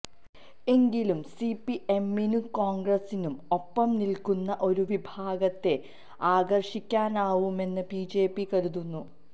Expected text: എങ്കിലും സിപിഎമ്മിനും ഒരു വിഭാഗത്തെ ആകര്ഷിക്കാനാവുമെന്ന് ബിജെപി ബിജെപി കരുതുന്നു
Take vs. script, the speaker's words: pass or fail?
fail